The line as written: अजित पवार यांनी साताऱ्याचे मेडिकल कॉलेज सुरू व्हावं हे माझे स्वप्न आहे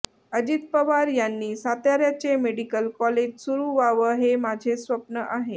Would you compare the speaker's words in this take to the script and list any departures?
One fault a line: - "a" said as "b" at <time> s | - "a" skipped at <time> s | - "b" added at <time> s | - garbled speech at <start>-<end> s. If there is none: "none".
none